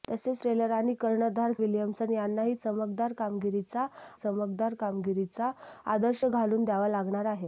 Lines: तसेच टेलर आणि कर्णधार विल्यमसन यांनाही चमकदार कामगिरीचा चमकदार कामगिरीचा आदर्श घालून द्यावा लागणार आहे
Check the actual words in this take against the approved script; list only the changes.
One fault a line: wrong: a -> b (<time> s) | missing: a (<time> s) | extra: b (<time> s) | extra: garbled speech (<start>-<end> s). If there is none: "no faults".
no faults